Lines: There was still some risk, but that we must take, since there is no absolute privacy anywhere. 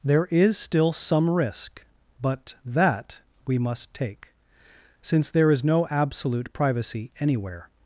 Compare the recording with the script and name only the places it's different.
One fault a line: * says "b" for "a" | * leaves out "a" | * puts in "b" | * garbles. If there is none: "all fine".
* says "is" for "was"